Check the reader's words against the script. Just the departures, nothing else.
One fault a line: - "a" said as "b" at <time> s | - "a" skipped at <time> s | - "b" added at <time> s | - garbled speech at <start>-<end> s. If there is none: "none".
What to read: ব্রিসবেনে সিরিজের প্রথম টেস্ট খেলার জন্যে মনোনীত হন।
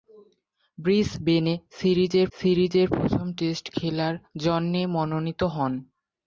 - "সিরিজের" added at 2.4 s